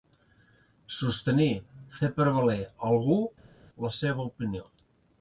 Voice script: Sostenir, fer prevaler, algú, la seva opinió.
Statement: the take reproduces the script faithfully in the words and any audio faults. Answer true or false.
true